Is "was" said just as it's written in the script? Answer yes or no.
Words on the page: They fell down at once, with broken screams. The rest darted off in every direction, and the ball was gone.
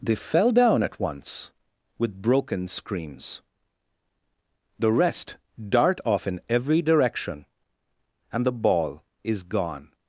no